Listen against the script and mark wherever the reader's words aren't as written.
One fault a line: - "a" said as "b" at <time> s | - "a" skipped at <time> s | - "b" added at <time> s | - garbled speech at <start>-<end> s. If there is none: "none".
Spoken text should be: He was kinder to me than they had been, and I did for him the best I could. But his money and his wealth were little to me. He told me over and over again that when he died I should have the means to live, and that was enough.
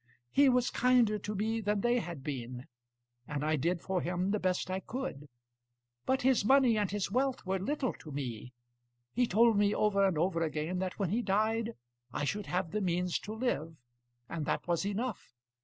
none